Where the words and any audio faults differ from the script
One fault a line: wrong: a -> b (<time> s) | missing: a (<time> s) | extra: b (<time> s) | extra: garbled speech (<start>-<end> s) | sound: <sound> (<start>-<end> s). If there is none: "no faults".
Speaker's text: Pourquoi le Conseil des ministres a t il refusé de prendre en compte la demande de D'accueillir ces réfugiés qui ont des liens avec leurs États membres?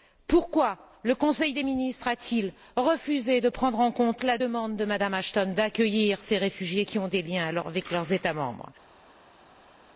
extra: Mme Ashton (4.8 s)